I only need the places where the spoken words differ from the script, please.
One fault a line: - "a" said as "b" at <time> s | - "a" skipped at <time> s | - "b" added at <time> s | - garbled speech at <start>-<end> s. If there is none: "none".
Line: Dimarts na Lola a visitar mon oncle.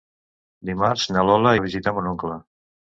none